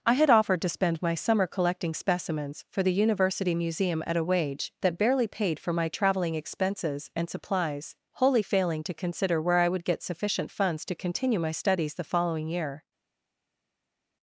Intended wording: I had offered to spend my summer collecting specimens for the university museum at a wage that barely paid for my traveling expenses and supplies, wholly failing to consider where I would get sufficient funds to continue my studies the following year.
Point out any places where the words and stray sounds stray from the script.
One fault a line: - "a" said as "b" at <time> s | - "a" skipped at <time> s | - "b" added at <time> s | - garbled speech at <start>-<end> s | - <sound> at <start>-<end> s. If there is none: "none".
none